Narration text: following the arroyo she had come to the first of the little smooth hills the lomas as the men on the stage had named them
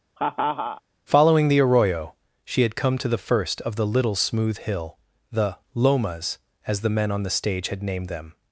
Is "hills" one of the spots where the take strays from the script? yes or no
yes